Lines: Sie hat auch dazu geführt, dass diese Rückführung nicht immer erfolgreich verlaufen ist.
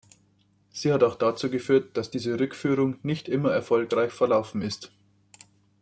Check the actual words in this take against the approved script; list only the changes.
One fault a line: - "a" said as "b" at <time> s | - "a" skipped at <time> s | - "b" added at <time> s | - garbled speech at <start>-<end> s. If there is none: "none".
none